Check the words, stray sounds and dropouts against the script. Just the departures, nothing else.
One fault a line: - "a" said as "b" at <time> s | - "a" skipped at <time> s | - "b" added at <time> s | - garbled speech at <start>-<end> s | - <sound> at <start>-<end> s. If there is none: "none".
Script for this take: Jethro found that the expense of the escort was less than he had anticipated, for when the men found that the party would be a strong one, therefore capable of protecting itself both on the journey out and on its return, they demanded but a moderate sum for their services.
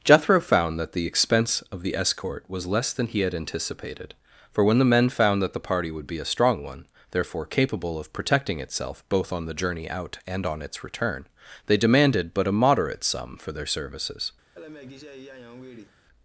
- laugh at 14.5-16.0 s